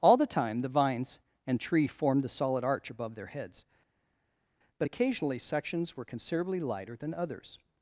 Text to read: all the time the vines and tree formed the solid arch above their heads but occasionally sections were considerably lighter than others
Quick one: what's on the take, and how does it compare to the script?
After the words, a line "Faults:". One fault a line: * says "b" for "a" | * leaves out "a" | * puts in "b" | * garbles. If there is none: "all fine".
all the time the vines and tree formed the solid arch above their heads but occasionally sections were considerably lighter than others
Faults:
all fine